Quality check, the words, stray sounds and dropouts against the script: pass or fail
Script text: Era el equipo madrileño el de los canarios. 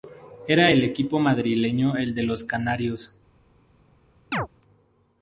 fail